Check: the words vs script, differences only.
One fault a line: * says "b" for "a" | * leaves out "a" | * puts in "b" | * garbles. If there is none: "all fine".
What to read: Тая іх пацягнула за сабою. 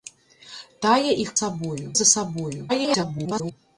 * says "сабою" for "пацягнула"
* garbles